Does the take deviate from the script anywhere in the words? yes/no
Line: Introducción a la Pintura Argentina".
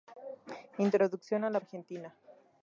yes